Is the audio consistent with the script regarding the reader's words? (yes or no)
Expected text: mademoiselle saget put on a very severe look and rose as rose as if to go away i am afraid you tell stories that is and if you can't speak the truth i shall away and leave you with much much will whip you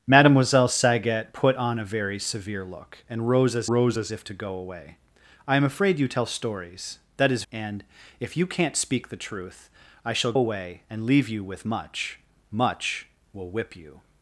yes